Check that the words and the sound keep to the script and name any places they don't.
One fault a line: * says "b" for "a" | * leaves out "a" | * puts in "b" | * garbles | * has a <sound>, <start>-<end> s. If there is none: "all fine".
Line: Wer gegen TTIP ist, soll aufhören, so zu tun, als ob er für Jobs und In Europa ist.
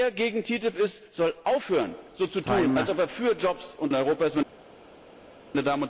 all fine